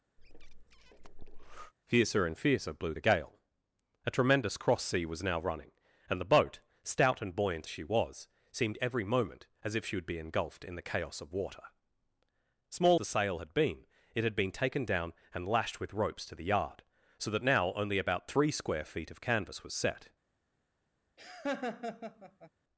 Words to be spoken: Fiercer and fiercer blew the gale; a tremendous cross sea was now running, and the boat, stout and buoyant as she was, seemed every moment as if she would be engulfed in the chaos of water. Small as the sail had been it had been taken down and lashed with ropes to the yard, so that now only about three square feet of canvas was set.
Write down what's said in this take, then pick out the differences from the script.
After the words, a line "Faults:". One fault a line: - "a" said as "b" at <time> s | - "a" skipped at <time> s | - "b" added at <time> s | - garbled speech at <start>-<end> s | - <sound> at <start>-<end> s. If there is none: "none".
Fiercer and fiercer blew the gale; a tremendous cross sea was now running, and the boat, stout and buoyant she was, seemed every moment as if she would be engulfed in the chaos of water. Small the sail had been it had been taken down and lashed with ropes to the yard, so that now only about three square feet of canvas was set.
Faults:
- breath at 0.2-1.7 s
- "as" skipped at 7.7 s
- "as" skipped at 13.0 s
- laugh at 21.2-22.5 s